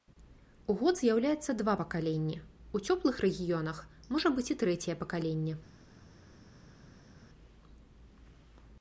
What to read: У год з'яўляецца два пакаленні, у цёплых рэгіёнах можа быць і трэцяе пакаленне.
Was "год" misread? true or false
false